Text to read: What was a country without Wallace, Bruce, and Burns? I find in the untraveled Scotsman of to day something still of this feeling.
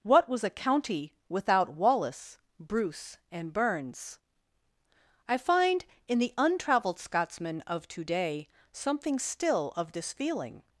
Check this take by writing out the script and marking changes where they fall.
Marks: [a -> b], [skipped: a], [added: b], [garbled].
What was a [country -> county] without Wallace, Bruce, and Burns? I find in the untraveled Scotsman of to day something still of this feeling.